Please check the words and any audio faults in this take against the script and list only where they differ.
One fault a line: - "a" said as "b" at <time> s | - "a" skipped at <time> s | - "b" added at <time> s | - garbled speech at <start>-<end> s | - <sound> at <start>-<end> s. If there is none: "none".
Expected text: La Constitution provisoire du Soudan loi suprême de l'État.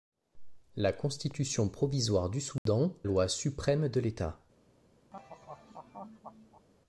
- dropout at 2.6-2.7 s
- laugh at 5.1-6.7 s